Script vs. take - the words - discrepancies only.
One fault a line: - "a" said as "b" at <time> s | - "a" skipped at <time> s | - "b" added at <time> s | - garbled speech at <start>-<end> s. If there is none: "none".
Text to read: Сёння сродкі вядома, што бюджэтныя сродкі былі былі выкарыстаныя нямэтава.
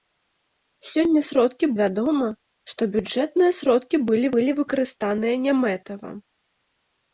none